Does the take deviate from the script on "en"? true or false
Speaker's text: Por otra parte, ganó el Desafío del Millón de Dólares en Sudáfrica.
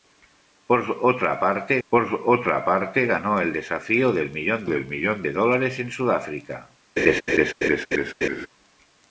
false